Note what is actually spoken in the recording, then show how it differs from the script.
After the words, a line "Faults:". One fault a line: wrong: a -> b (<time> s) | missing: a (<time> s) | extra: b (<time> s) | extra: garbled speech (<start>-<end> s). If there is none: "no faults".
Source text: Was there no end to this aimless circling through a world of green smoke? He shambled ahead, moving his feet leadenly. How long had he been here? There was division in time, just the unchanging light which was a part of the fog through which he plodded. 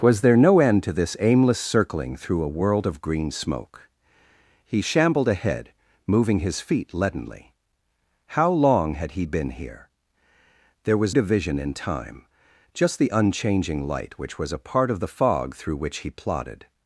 Was there no end to this aimless circling through a world of green smoke? He shambled ahead, moving his feet leadenly. How long had he been here? There was division in time, just the unchanging light which was a part of the fog through which he plodded.
Faults:
no faults